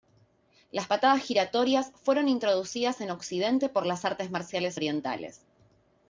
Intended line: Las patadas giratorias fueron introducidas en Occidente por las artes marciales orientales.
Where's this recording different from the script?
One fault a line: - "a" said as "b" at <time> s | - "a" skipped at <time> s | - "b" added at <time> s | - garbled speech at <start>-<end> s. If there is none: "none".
none